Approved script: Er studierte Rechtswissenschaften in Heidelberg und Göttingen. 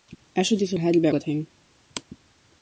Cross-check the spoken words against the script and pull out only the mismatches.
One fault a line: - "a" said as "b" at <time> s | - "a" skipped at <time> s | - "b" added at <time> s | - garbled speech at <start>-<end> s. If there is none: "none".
- "Rechtswissenschaften" skipped at 0.8 s
- "und" skipped at 1.1 s